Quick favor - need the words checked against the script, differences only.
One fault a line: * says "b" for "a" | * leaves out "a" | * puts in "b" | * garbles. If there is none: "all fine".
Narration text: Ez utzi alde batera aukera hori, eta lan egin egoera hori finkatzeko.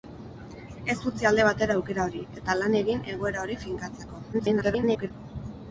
* garbles